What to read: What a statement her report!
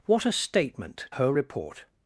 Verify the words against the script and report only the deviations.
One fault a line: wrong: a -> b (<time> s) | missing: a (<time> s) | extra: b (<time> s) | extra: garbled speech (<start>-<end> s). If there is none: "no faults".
no faults